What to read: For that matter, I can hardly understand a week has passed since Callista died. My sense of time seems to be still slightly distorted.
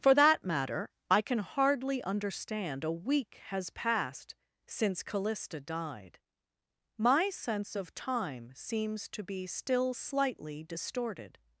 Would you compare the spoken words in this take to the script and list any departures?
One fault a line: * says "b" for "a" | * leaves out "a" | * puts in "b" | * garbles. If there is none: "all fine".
all fine